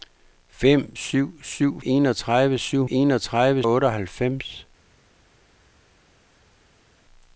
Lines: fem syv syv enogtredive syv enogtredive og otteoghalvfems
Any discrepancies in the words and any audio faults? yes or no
no